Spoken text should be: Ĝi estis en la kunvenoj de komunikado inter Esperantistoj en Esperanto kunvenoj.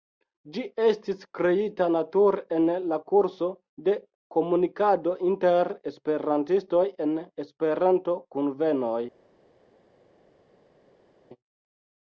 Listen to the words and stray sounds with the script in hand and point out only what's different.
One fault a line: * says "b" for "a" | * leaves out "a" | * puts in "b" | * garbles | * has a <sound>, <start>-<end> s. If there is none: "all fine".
* puts in "kreita nature"
* says "kurso" for "kunvenoj"